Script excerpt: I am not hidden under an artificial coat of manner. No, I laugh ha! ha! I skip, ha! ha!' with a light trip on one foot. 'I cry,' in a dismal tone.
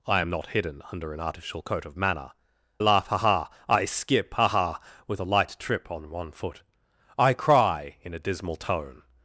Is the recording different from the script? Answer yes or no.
yes